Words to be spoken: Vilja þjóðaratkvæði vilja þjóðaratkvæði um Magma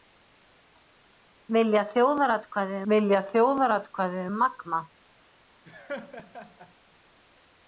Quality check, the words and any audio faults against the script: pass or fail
fail